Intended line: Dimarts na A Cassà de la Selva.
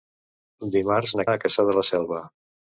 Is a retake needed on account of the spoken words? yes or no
no